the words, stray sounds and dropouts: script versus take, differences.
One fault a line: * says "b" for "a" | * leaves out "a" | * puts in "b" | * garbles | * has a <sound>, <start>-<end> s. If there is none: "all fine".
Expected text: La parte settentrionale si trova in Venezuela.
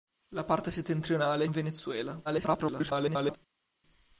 * leaves out "si trova"
* garbles